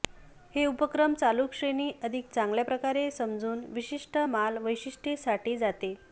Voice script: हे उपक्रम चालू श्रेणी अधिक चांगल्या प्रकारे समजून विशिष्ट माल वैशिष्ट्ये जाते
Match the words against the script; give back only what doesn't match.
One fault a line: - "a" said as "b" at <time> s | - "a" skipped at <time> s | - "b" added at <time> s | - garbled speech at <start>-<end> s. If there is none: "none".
- "साठी" added at 5.2 s